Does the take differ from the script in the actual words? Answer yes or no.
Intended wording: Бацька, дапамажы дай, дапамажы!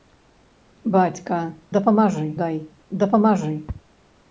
no